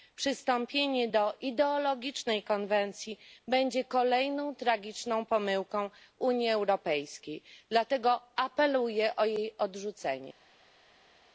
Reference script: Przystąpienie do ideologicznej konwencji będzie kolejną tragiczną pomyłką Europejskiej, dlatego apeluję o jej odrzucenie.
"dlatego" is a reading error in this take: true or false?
false